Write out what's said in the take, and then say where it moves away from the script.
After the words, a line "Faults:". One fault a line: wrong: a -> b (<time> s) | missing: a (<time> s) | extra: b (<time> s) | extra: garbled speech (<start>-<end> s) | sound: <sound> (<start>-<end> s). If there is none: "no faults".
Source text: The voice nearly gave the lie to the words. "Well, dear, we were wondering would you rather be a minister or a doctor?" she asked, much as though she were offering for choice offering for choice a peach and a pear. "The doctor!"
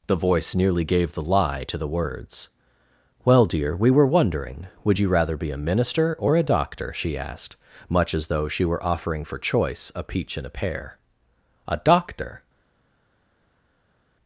The voice nearly gave the lie to the words. "Well, dear, we were wondering would you rather be a minister or a doctor?" she asked, much as though she were offering for choice a peach and a pear. "A doctor!"
Faults:
missing: offering for choice (9.9 s)
wrong: The -> A (11.7 s)